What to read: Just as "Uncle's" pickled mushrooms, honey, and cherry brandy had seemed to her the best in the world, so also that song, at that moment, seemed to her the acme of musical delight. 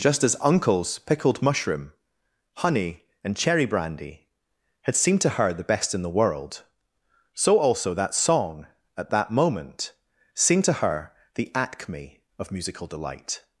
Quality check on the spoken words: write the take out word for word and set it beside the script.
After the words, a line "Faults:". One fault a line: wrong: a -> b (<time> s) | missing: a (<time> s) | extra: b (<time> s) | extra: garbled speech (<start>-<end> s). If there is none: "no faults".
Just as "Uncle's" pickled mushroom, honey, and cherry brandy had seemed to her the best in the world, so also that song, at that moment, seemed to her the acme of musical delight.
Faults:
wrong: mushrooms -> mushroom (1.4 s)